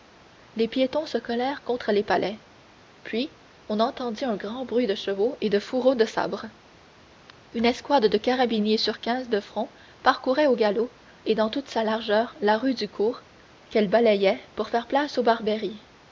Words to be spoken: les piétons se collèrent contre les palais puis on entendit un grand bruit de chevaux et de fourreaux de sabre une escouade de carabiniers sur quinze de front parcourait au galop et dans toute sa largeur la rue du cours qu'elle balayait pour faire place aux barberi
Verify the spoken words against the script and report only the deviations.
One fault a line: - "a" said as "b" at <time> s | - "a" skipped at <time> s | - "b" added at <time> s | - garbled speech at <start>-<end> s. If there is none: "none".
none